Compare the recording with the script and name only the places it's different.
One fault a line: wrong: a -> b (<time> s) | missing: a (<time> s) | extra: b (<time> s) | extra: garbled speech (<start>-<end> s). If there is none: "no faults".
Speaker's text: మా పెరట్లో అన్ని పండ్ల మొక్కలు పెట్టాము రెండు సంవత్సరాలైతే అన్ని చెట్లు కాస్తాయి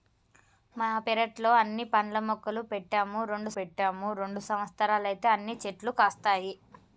extra: పెట్టాము రెండు (3.5 s)